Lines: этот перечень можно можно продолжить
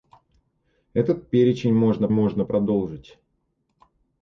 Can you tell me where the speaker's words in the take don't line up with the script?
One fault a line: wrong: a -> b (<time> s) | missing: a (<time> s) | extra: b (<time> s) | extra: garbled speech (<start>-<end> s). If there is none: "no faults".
no faults